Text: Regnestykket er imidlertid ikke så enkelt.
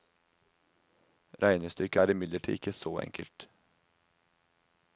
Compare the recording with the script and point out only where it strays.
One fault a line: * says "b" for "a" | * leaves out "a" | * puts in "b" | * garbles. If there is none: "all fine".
all fine